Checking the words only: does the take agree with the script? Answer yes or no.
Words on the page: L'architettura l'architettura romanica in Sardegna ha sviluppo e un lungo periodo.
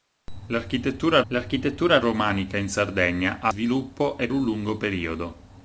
yes